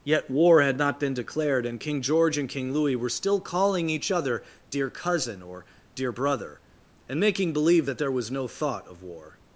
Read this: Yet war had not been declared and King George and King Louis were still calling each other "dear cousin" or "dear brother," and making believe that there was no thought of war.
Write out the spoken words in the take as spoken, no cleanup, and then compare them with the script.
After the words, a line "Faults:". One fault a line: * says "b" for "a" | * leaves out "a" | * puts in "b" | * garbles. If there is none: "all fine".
Yet war had not been declared and King George and King Louis were still calling each other "dear cousin" or "dear brother," and making believe that there was no thought of war.
Faults:
all fine